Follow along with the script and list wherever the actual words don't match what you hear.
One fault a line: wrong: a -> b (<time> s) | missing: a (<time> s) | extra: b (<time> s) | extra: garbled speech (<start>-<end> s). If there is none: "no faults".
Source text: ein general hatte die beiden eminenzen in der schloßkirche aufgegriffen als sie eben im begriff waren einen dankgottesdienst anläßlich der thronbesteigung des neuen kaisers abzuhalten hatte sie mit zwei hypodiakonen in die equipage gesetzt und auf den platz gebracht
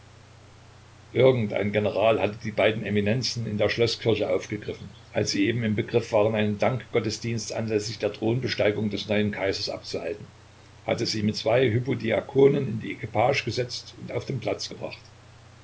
no faults